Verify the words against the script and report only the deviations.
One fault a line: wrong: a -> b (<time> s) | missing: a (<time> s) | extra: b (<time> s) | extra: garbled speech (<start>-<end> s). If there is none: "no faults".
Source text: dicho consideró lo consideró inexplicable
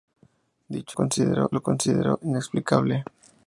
no faults